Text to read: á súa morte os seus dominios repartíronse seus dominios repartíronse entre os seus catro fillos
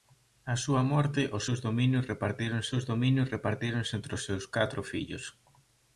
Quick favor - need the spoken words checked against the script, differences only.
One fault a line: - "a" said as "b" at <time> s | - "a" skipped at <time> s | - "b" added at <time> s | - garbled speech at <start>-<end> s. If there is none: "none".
none